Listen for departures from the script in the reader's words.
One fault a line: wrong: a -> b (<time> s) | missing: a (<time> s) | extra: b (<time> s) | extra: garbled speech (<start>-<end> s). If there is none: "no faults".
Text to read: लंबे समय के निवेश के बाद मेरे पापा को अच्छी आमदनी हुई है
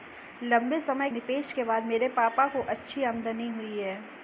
missing: के (1.1 s)